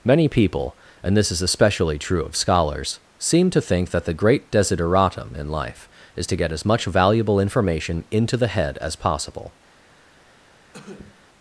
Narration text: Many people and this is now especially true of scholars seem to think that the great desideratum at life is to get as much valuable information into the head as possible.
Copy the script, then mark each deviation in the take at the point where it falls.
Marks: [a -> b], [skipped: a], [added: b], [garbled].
Many people and this is [skipped: now] especially true of scholars seem to think that the great desideratum [at -> in] life is to get as much valuable information into the head as possible.